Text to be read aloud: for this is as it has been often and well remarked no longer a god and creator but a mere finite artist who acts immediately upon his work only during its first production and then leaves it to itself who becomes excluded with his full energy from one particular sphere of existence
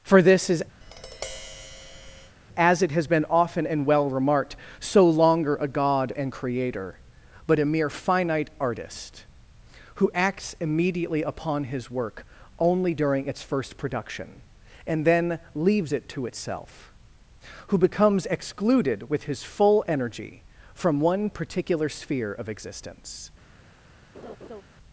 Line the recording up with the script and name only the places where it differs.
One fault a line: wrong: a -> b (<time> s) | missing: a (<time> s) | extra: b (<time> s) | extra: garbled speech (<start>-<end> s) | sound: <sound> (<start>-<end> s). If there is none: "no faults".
sound: tap (0.8-2.4 s)
wrong: no -> so (4.8 s)
sound: laugh (24.1-24.6 s)